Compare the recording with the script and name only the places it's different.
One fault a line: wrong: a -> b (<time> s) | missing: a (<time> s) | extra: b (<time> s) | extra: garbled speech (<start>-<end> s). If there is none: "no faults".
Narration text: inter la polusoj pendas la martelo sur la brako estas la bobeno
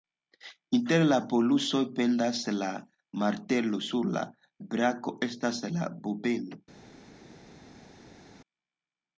no faults